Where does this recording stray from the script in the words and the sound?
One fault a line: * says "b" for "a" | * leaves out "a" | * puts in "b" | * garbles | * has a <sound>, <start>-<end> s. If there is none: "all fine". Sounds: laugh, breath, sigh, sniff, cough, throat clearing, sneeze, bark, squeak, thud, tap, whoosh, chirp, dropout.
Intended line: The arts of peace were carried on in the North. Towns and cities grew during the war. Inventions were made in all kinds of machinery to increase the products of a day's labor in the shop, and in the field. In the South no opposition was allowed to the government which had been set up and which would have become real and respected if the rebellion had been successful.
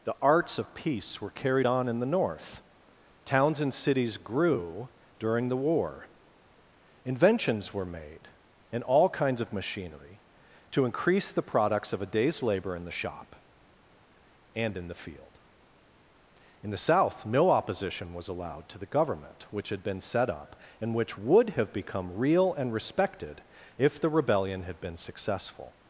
all fine